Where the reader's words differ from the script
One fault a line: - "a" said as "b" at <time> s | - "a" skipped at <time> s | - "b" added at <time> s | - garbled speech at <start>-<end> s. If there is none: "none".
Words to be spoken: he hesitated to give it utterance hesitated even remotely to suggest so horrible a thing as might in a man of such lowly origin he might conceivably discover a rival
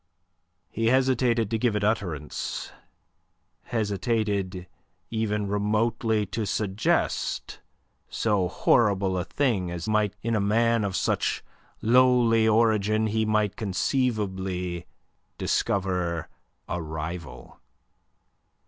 none